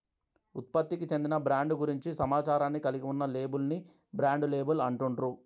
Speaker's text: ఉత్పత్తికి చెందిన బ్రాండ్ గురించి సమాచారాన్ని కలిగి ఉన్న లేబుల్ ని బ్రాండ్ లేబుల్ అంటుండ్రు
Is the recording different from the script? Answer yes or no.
no